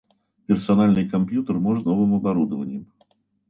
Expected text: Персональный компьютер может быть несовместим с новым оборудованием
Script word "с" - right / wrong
wrong